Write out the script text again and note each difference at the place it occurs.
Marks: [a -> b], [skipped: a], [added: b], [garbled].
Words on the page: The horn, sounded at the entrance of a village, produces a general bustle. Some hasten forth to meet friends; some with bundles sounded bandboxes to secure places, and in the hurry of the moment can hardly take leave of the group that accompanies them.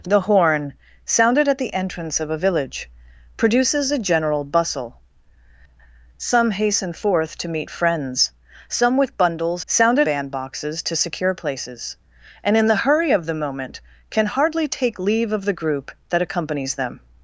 The horn, sounded at the entrance of a village, produces a general bustle. Some hasten forth to meet friends; some with bundles sounded bandboxes to secure places, and in the hurry of the moment can hardly take leave of the group that accompanies them.